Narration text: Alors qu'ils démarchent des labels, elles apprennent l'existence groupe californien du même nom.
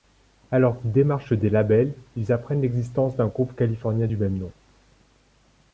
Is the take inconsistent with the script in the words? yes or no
yes